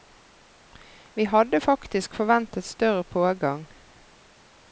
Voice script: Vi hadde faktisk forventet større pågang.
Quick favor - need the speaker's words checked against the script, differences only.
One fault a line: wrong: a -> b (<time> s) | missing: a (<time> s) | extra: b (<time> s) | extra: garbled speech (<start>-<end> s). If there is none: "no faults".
no faults